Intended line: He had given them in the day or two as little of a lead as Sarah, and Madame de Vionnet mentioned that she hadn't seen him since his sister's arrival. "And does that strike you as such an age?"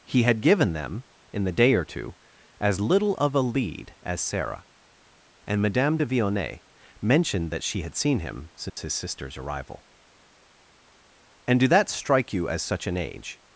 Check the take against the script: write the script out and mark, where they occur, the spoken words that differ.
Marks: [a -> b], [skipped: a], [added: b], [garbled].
He had given them in the day or two as little of a lead as Sarah, and Madame de Vionnet mentioned that she [hadn't -> had] seen him since his sister's arrival. "And [does -> do] that strike you as such an age?"